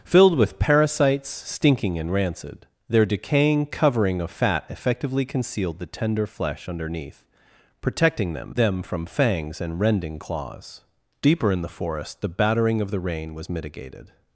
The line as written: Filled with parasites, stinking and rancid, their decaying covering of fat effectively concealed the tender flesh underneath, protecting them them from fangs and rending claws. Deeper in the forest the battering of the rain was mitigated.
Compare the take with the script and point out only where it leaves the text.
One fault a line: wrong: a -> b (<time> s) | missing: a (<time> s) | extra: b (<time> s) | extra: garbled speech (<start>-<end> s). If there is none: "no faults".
no faults